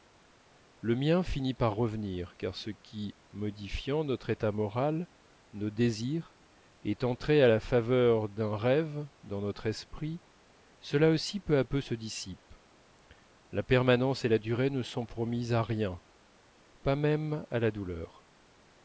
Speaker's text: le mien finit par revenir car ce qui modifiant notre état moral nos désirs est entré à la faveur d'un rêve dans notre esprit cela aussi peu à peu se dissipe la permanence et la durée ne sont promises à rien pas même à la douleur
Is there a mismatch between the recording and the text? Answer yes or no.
no